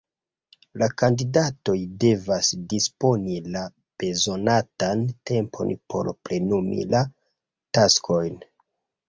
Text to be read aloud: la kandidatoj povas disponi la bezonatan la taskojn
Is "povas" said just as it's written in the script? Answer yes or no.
no